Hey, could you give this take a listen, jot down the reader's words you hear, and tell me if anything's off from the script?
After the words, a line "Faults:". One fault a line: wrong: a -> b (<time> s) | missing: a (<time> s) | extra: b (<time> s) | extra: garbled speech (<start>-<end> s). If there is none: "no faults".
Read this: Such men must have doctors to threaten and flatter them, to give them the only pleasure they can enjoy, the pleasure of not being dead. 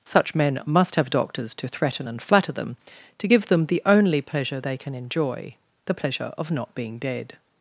Such men must have doctors to threaten and flatter them, to give them the only pleasure they can enjoy, the pleasure of not being dead.
Faults:
no faults